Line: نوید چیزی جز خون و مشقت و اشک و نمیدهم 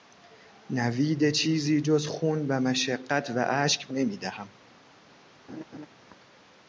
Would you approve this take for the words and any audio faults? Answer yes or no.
no